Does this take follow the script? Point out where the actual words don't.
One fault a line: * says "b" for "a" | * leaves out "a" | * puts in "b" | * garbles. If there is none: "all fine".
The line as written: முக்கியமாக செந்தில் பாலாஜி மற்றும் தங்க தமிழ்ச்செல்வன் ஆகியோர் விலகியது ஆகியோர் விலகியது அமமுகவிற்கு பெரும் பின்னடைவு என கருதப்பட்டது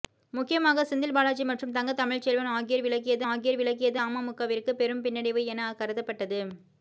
all fine